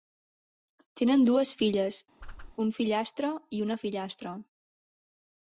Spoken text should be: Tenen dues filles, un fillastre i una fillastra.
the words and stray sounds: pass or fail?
fail